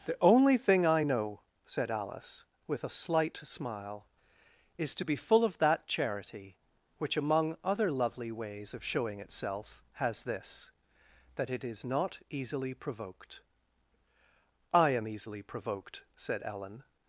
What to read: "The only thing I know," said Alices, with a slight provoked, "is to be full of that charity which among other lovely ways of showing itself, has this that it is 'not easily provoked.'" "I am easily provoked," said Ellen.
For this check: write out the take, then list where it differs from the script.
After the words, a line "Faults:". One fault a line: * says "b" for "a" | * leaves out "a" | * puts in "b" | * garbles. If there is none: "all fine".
"The only thing I know," said Alice, with a slight smile, "is to be full of that charity which among other lovely ways of showing itself, has this that it is 'not easily provoked.'" "I am easily provoked," said Ellen.
Faults:
* says "Alice" for "Alices"
* says "smile" for "provoked"